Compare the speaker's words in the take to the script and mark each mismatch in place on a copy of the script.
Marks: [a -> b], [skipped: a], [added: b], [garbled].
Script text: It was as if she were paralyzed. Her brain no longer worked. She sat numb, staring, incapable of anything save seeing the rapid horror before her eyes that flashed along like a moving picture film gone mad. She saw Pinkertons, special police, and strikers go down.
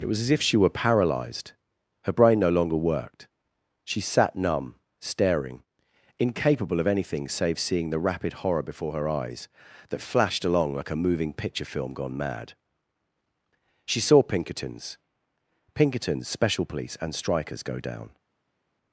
It was as if she were paralyzed. Her brain no longer worked. She sat numb, staring, incapable of anything save seeing the rapid horror before her eyes that flashed along like a moving picture film gone mad. She saw Pinkertons, [added: Pinkertons] special police, and strikers go down.